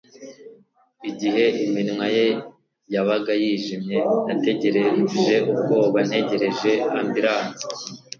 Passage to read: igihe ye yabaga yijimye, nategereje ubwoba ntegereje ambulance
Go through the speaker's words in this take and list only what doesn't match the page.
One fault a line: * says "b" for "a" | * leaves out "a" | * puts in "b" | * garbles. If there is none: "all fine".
* puts in "iminwa"